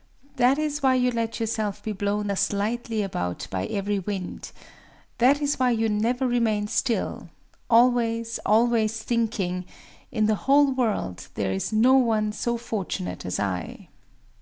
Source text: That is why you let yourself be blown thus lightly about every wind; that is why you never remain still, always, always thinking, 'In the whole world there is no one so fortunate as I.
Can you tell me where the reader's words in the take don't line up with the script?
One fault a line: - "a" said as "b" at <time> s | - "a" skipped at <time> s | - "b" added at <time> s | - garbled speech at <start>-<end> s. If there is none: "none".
- "by" added at 3.5 s